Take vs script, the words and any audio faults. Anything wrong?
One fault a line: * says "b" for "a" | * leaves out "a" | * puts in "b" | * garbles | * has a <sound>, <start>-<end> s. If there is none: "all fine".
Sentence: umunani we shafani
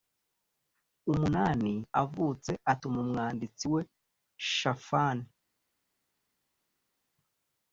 * puts in "avutse atuma umwanditsi"